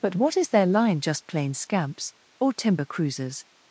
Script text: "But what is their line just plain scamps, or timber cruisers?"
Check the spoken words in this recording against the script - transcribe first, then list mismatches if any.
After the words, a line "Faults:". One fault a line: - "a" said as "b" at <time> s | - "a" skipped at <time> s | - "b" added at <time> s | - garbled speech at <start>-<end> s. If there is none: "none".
"But what is their line just plain scamps, or timber cruisers?"
Faults:
none